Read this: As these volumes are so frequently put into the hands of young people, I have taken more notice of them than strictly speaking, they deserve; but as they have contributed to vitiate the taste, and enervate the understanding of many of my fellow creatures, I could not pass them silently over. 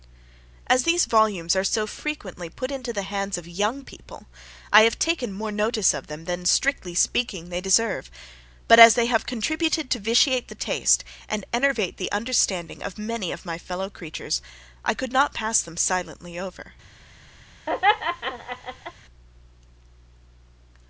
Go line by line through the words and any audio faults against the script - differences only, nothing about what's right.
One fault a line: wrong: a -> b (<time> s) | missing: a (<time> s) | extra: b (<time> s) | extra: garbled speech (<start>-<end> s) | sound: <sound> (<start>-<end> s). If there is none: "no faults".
sound: laugh (17.7-18.9 s)